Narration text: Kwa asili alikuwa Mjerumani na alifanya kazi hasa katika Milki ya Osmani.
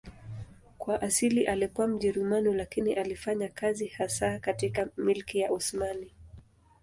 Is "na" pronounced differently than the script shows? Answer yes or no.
yes